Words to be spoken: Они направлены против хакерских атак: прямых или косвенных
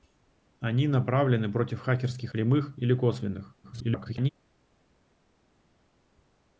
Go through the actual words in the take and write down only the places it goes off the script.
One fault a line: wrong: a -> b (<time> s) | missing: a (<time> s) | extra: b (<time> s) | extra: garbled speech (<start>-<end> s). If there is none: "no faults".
missing: атак (2.3 s)
extra: garbled speech (3.6-4.3 s)